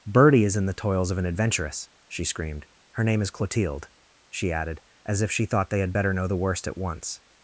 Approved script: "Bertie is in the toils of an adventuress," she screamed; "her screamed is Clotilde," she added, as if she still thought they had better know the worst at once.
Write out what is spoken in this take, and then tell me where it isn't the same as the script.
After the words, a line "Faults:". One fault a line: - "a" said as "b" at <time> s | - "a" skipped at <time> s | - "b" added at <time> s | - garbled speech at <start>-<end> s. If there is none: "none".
"Bertie is in the toils of an adventuress," she screamed; "her name is Clotilde," she added, as if she thought they had better know the worst at once.
Faults:
- "screamed" said as "name" at 3.0 s
- "still" skipped at 5.5 s